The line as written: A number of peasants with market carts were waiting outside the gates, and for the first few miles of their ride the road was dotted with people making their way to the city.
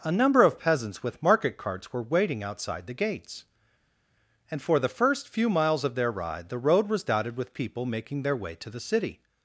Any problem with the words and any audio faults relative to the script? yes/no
no